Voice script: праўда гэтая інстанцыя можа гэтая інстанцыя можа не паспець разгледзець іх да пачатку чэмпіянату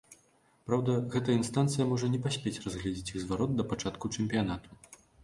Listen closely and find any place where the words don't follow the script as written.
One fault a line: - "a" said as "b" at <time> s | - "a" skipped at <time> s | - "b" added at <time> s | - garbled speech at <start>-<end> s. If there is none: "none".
- "гэтая інстанцыя можа" skipped at 2.1 s
- "зварот" added at 3.2 s